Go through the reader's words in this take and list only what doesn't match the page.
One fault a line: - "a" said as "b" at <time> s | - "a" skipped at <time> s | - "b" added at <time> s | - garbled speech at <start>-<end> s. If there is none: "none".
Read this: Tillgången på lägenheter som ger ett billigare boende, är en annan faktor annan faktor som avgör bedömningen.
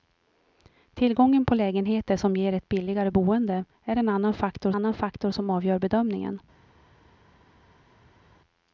none